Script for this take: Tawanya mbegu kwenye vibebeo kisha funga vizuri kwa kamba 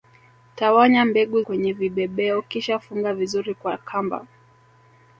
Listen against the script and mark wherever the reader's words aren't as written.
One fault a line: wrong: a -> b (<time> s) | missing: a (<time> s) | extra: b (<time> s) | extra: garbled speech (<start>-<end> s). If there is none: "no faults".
no faults